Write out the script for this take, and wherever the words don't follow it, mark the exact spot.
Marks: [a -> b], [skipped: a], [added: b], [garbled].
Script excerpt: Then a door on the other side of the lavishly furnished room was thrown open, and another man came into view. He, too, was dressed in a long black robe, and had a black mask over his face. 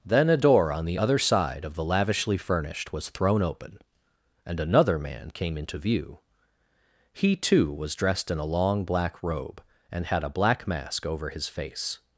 Then a door on the other side of the lavishly furnished [skipped: room] was thrown open, and another man came into view. He, too, was dressed in a long black robe, and had a black mask over his face.